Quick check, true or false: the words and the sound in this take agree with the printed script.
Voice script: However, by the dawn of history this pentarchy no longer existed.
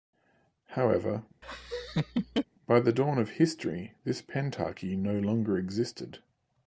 false